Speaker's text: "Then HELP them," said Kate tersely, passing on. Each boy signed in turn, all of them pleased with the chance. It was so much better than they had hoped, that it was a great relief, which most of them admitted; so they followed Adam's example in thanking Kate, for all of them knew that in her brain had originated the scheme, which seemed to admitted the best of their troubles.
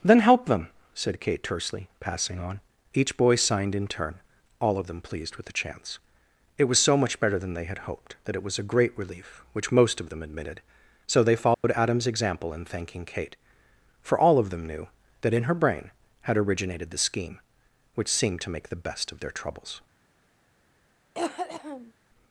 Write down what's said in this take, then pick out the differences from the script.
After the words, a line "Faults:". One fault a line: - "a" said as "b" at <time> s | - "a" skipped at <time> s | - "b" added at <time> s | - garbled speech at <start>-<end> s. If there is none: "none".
"Then HELP them," said Kate tersely, passing on. Each boy signed in turn, all of them pleased with the chance. It was so much better than they had hoped, that it was a great relief, which most of them admitted; so they followed Adam's example in thanking Kate, for all of them knew that in her brain had originated the scheme, which seemed to make the best of their troubles.
Faults:
- "admitted" said as "make" at 18.5 s